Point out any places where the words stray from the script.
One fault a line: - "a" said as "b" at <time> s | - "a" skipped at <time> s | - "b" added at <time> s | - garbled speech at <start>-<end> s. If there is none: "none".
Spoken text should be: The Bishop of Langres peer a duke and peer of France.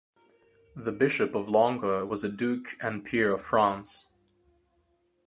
- "peer" said as "was" at 2.1 s